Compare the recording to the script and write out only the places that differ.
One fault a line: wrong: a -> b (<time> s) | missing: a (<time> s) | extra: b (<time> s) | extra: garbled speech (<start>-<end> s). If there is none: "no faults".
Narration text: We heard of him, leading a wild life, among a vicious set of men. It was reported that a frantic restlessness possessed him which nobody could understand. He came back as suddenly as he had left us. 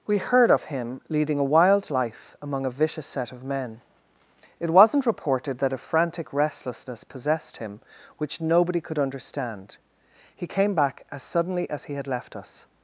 wrong: was -> wasn't (4.7 s)